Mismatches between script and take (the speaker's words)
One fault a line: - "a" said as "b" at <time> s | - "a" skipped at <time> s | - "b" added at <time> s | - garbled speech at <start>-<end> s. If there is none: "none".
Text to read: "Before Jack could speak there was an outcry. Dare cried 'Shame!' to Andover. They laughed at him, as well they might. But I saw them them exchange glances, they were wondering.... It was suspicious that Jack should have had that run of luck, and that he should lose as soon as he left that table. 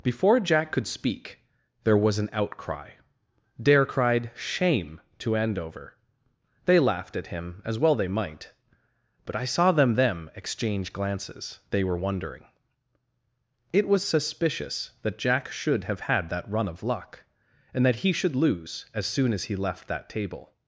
none